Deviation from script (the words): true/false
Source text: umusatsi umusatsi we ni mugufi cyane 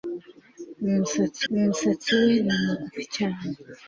false